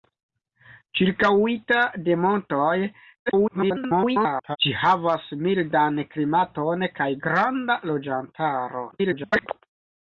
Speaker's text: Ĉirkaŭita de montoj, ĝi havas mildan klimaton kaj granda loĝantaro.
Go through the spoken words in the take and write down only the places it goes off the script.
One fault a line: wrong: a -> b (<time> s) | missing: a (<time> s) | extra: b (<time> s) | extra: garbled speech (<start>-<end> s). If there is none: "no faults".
extra: garbled speech (3.3-4.6 s)
extra: garbled speech (8.9-9.5 s)